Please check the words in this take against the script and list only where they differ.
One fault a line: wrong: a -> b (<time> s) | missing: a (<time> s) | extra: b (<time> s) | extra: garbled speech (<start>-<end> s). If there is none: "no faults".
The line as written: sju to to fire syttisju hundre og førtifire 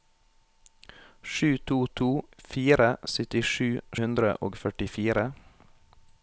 no faults